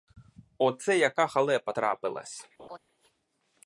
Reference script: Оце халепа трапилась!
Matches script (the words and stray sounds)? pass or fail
fail